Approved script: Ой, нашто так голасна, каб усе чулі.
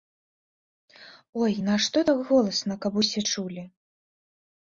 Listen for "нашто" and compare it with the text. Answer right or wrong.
right